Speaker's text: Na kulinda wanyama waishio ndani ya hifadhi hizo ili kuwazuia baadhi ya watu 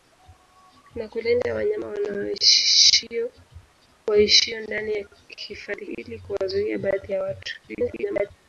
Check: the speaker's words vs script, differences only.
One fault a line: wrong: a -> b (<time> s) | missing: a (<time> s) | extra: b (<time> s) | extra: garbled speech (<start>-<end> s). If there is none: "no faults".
missing: hizo (5.8 s)
extra: garbled speech (7.7-8.3 s)